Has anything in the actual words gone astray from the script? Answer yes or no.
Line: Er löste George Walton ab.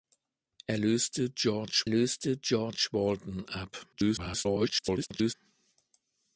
yes